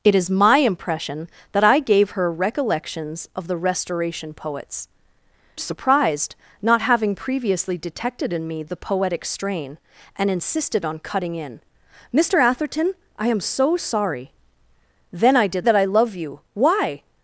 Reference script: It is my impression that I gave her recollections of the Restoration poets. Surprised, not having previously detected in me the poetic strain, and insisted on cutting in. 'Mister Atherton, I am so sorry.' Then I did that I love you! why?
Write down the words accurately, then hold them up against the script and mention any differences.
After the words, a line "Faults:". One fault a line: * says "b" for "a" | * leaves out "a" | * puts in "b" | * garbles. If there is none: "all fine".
It is my impression that I gave her recollections of the Restoration poets. Surprised, not having previously detected in me the poetic strain, and insisted on cutting in. 'Mister Atherton, I am so sorry.' Then I did that I love you! why?
Faults:
all fine